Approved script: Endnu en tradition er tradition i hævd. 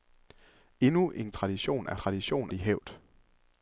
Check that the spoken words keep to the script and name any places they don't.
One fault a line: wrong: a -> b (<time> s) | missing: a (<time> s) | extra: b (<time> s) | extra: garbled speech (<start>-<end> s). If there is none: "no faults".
no faults